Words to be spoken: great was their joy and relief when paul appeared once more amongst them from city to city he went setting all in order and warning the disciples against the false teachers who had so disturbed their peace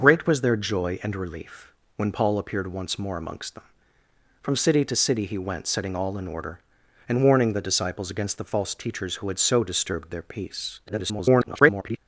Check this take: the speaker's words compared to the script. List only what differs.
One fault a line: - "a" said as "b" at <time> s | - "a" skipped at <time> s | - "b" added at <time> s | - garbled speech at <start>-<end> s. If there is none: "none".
- garbled speech at 10.9-12.0 s